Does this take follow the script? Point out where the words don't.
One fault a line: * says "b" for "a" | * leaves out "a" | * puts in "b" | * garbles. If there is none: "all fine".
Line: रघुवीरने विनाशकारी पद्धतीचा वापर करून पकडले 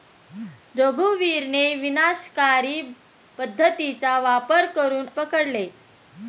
all fine